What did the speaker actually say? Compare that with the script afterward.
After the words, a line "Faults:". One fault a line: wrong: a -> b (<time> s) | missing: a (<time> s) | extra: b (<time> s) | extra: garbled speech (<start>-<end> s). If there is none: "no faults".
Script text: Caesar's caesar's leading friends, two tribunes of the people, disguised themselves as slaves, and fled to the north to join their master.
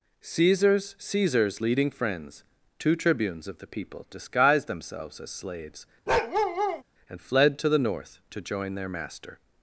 Caesar's caesar's leading friends, two tribunes of the people, disguised themselves as slaves, and fled to the north to join their master.
Faults:
no faults